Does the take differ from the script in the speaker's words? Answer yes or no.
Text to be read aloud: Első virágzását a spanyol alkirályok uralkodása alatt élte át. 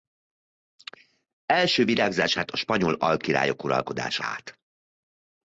yes